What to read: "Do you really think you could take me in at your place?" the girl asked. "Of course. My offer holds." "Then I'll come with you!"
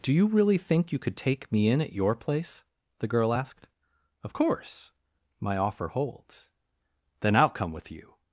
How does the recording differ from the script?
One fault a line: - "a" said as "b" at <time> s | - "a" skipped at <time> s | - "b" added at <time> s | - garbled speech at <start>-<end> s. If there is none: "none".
none